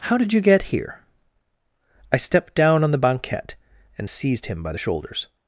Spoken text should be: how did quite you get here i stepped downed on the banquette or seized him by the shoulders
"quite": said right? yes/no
no